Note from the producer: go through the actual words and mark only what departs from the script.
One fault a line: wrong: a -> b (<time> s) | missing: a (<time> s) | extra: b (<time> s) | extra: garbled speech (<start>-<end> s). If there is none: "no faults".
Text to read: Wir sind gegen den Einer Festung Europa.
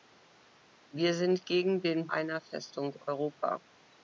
no faults